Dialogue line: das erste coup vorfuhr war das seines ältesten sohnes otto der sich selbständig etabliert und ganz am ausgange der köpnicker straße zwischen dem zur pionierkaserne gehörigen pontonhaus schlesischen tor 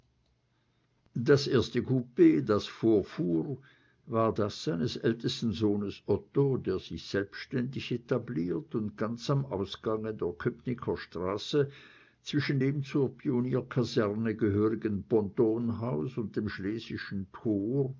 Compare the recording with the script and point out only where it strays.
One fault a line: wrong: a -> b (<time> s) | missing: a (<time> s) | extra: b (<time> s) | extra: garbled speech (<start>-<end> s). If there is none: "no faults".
extra: das (2.5 s)
extra: und dem (16.2 s)